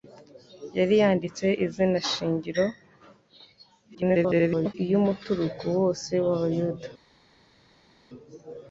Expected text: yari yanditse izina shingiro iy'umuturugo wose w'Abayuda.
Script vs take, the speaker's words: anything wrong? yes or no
yes